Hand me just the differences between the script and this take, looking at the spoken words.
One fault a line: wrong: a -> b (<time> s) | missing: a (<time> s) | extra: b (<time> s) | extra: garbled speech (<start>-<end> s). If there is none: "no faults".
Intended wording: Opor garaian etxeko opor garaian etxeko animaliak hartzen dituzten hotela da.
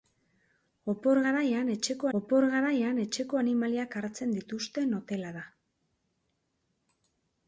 no faults